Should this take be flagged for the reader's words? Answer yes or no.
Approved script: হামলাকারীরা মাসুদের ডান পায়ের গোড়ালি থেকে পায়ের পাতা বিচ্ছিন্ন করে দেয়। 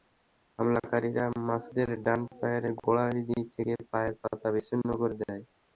no